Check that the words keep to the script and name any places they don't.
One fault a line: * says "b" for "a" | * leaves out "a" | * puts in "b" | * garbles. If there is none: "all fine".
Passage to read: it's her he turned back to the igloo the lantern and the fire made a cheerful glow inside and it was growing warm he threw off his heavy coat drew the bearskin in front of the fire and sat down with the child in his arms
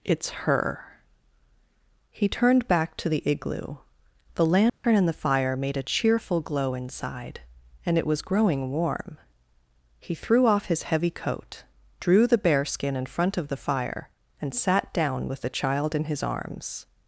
all fine